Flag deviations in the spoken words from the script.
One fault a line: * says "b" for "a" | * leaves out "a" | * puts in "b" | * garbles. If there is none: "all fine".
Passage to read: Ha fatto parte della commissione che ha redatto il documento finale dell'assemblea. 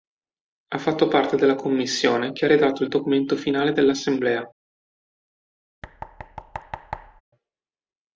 all fine